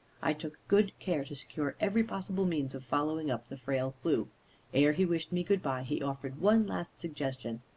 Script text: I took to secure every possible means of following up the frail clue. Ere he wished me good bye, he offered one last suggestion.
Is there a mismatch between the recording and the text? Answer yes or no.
yes